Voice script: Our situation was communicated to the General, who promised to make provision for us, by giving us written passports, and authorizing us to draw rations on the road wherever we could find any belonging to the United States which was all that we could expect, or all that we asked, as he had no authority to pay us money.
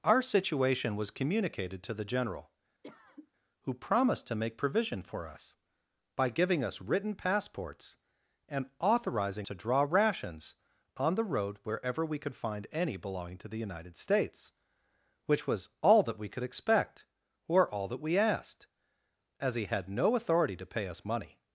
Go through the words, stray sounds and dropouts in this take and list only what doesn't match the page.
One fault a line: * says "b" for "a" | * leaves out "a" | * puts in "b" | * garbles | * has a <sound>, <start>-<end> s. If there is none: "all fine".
* has a cough, 2.8-3.3 s
* leaves out "us"